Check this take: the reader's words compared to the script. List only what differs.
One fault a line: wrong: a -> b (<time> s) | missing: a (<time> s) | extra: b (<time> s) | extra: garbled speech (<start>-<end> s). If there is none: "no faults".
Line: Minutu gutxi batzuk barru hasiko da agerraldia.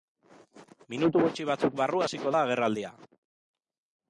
no faults